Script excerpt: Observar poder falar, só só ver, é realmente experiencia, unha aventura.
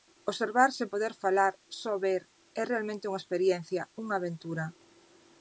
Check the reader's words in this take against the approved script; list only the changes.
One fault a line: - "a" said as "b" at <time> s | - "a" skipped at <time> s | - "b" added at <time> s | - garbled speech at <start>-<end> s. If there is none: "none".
- "sen" added at 0.8 s
- "só" skipped at 1.9 s
- "unha" added at 3.1 s